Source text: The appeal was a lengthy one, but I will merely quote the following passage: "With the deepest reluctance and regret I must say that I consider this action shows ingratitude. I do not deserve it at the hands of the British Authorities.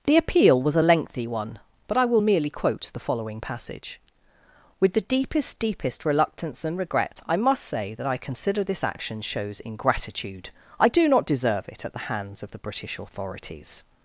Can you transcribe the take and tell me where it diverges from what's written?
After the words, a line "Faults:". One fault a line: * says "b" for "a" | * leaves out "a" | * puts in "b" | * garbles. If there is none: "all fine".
The appeal was a lengthy one, but I will merely quote the following passage: "With the deepest deepest reluctance and regret I must say that I consider this action shows ingratitude. I do not deserve it at the hands of the British Authorities.
Faults:
* puts in "deepest"